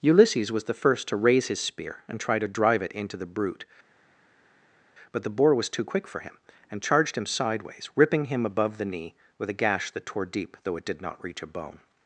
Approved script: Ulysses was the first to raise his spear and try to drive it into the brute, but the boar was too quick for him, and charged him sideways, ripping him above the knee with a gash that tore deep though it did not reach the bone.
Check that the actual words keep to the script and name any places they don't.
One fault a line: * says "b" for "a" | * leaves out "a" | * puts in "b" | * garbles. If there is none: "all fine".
* says "a" for "the"